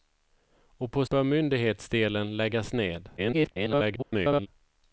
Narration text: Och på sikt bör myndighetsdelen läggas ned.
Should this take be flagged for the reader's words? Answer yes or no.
yes